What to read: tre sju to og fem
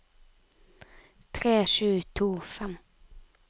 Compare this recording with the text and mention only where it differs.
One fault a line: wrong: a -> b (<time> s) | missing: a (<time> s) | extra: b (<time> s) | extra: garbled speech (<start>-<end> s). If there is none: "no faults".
no faults